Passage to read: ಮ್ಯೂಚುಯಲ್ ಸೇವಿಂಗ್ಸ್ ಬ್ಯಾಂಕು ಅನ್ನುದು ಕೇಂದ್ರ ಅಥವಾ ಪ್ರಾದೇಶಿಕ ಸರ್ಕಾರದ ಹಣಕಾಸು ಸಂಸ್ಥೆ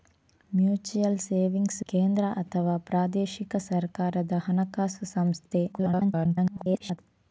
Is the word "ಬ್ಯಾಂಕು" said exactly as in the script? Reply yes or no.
no